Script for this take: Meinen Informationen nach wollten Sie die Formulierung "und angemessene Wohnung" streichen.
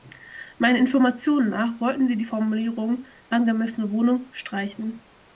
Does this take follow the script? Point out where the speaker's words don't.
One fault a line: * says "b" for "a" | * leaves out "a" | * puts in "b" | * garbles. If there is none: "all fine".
* leaves out "und"